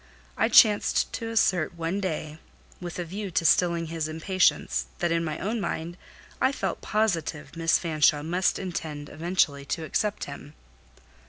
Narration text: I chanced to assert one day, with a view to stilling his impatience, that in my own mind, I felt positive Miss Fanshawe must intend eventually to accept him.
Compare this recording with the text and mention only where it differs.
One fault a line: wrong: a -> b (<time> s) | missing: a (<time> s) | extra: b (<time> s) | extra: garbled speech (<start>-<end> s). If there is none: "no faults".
no faults